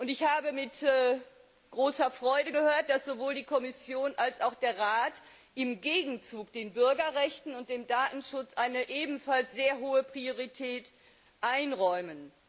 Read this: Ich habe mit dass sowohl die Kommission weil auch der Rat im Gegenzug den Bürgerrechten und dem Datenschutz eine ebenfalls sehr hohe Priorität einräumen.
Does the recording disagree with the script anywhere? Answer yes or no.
yes